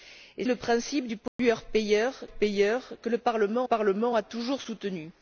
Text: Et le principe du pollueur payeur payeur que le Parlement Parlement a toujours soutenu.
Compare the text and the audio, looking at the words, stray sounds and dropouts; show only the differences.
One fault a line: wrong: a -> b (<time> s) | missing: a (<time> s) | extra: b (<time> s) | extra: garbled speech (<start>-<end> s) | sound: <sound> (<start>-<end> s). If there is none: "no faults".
sound: dropout (1.3-1.4 s)